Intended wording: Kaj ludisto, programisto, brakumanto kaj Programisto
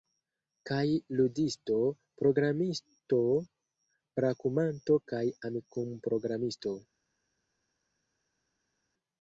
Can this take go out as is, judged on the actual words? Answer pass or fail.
fail